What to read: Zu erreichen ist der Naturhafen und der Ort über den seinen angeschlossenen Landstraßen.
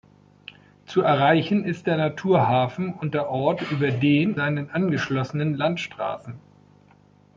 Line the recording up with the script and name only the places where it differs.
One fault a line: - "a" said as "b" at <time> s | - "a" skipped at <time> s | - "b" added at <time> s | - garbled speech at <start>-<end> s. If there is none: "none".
none